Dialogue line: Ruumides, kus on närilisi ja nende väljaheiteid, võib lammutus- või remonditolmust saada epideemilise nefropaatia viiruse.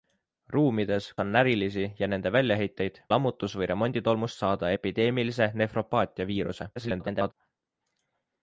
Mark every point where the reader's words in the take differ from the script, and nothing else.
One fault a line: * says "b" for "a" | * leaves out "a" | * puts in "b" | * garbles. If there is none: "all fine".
* leaves out "kus"
* leaves out "võib"
* garbles